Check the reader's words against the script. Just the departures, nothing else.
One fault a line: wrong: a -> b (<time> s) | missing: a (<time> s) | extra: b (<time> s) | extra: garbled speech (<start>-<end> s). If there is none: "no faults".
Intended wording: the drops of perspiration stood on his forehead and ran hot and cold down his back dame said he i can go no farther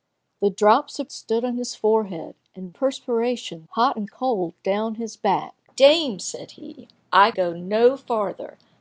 missing: perspiration (1.1 s)
wrong: ran -> perspiration (2.7 s)
missing: can (7.3 s)